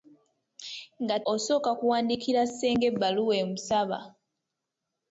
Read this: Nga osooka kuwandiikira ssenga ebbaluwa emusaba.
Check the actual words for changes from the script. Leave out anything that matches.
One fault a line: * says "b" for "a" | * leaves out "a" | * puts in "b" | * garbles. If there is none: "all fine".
all fine